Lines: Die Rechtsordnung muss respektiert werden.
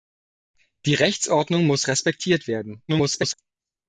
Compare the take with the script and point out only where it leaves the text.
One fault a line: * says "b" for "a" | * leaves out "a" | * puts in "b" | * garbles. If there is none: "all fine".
* garbles